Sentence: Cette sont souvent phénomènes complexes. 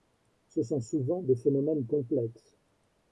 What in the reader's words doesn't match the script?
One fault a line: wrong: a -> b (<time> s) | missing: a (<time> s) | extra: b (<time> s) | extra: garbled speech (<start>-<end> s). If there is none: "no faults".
wrong: Cette -> Ce (0.5 s)
extra: des (1.2 s)